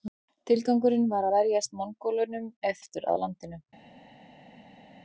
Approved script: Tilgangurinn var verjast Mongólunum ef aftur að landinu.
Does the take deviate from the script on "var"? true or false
false